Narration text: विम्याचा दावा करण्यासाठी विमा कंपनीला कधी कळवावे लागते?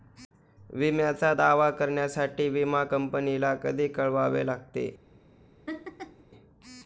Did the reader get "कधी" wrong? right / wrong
right